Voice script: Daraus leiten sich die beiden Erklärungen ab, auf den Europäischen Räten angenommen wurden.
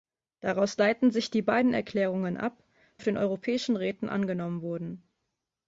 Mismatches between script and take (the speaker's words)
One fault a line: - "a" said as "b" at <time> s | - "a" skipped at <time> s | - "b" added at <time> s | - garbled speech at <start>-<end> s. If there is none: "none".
none